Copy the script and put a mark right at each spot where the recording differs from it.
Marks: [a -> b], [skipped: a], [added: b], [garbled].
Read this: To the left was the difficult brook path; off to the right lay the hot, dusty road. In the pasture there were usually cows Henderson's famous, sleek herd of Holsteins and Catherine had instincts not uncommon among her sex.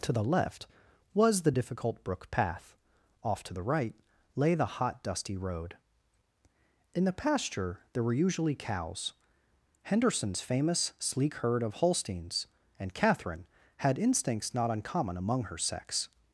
To the left was the difficult brook path; off to the right lay the hot, dusty road. In the pasture there were usually cows Henderson's famous, sleek herd of Holsteins and Catherine had instincts not uncommon among her sex.